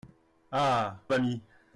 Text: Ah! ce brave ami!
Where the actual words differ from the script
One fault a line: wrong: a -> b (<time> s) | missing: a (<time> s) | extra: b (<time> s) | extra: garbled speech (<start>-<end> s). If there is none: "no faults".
missing: ce brave (1.0 s)